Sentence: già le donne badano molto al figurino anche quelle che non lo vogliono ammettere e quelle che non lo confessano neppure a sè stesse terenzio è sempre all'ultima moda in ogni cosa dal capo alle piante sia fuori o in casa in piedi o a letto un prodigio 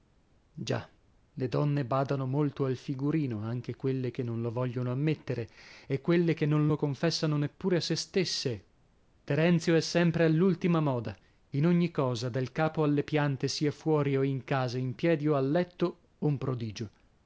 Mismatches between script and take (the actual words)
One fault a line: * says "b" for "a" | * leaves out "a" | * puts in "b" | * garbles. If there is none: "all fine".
all fine